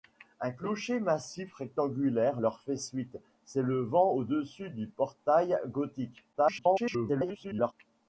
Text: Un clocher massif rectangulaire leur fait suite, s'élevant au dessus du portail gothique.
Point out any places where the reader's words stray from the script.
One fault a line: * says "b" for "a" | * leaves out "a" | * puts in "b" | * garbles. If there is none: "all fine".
* garbles